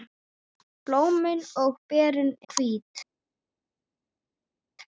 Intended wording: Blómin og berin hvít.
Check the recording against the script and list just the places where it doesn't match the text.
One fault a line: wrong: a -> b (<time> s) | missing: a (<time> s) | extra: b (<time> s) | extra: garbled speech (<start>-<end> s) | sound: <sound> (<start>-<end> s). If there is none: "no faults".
no faults